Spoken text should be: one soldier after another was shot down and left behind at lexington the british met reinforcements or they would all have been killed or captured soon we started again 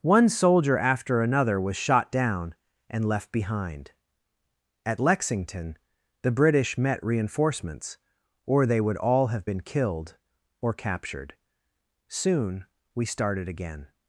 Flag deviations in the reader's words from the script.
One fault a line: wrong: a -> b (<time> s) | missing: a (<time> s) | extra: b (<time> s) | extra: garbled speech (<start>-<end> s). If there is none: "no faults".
no faults